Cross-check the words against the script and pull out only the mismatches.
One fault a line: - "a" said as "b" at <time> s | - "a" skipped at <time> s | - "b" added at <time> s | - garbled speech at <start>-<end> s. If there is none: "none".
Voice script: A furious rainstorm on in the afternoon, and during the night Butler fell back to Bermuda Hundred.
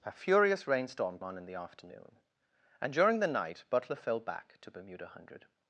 none